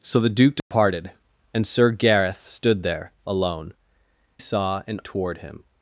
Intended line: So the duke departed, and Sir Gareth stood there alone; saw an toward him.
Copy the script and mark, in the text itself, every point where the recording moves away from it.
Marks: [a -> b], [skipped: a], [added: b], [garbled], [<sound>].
So the duke departed, [dropout] and Sir Gareth stood there alone; saw an toward him.